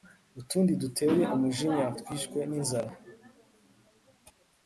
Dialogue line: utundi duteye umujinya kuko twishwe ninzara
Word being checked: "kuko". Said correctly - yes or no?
no